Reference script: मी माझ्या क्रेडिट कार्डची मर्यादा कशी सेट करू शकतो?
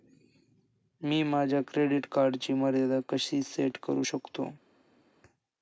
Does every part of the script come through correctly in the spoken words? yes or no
yes